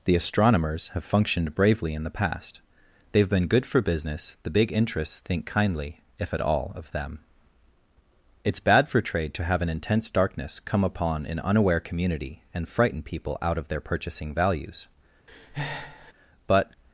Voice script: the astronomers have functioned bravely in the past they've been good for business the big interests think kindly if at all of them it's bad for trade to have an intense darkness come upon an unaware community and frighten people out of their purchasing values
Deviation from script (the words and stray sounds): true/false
true